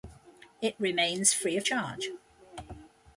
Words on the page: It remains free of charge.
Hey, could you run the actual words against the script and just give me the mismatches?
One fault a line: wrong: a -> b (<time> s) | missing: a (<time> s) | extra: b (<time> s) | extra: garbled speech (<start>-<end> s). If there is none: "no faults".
no faults